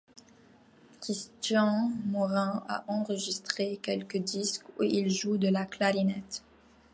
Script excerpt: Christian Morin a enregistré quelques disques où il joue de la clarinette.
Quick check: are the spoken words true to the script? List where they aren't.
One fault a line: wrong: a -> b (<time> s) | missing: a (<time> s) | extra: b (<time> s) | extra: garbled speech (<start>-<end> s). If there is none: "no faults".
no faults